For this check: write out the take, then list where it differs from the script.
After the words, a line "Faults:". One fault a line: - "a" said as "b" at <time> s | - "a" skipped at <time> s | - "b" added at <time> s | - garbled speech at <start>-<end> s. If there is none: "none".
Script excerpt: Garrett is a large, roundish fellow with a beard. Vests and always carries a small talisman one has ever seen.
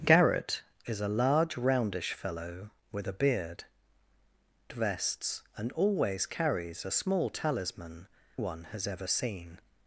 Garrett is a large, roundish fellow with a beard. Vests and always carries a small talisman one has ever seen.
Faults:
none